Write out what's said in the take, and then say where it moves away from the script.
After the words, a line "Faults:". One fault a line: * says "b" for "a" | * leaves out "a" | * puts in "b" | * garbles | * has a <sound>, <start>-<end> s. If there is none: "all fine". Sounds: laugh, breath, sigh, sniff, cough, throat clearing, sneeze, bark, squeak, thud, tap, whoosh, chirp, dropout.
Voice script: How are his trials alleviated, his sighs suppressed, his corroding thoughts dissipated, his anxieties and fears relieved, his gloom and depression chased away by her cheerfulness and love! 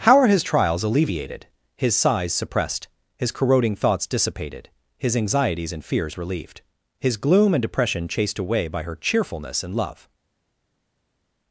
How are his trials alleviated, his sighs suppressed, his corroding thoughts dissipated, his anxieties and fears relieved, his gloom and depression chased away by her cheerfulness and love!
Faults:
all fine